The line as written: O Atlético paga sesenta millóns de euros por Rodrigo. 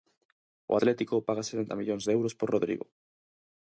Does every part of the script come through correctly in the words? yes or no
yes